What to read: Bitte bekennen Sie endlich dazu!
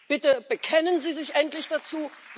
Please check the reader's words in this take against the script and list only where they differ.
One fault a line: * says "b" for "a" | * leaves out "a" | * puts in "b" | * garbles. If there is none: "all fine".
* puts in "sich"